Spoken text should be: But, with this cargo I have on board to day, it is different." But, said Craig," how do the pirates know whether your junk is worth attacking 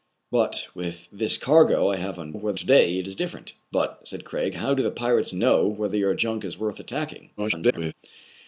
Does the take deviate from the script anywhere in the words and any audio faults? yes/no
yes